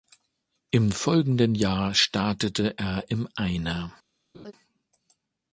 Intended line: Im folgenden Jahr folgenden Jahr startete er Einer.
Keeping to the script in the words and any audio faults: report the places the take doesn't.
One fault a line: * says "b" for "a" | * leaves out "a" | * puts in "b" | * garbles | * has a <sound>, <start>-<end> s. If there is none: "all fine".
* leaves out "folgenden Jahr"
* puts in "im"
* has a laugh, 4.3-4.5 s